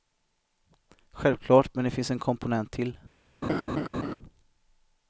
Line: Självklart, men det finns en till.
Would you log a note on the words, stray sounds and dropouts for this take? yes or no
yes